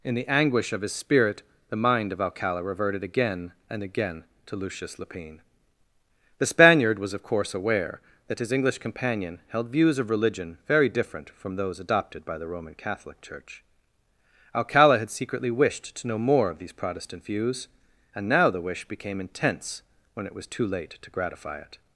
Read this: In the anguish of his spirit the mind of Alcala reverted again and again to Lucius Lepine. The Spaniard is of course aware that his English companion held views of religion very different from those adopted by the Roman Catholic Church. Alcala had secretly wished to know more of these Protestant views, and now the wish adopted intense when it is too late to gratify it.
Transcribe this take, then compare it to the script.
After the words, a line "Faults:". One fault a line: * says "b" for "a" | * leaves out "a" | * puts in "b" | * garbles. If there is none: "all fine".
In the anguish of his spirit the mind of Alcala reverted again and again to Lucius Lepine. The Spaniard was of course aware that his English companion held views of religion very different from those adopted by the Roman Catholic Church. Alcala had secretly wished to know more of these Protestant views, and now the wish became intense when it was too late to gratify it.
Faults:
* says "was" for "is"
* says "became" for "adopted"
* says "was" for "is"